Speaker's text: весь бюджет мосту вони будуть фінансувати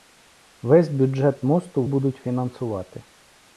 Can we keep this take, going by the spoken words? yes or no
no